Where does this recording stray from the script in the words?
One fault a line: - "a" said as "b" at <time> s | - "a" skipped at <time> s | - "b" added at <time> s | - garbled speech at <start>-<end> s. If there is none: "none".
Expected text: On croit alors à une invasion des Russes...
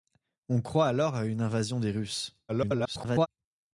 - garbled speech at 2.5-3.3 s